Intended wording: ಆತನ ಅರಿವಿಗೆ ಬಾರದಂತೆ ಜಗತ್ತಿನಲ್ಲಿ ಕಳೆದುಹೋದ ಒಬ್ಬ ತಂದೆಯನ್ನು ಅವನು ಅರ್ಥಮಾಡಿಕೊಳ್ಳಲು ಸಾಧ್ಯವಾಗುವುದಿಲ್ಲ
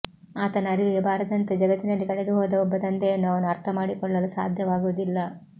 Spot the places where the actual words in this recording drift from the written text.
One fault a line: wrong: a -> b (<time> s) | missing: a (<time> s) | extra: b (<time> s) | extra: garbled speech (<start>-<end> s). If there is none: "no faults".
no faults